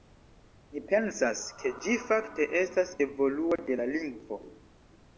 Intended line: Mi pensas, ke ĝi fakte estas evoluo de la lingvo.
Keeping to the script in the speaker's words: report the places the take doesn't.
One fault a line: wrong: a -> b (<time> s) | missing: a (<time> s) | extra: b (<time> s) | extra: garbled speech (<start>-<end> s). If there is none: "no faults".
no faults